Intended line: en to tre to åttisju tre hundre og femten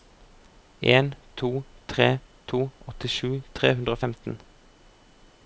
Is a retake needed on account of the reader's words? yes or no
no